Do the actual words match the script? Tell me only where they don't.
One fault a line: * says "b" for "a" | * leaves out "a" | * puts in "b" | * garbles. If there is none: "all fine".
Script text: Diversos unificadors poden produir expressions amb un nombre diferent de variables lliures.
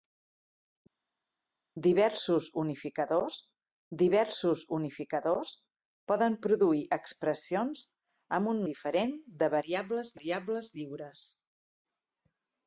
* puts in "diversos unificadors"
* leaves out "nombre"
* puts in "variables"